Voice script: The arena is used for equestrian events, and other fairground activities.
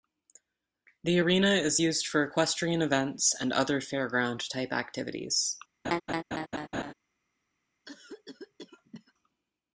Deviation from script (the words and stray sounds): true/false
true